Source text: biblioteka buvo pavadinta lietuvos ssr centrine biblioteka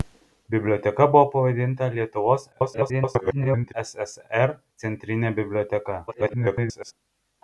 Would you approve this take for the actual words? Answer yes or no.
no